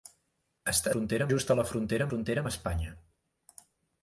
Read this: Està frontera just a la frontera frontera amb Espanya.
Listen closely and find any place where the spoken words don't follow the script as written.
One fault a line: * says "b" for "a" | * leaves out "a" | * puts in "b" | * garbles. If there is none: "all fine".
all fine